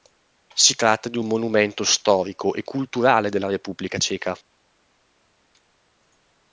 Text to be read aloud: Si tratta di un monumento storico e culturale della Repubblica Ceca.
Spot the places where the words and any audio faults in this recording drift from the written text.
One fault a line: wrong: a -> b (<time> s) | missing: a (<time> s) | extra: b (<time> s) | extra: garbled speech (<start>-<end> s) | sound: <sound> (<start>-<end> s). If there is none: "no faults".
no faults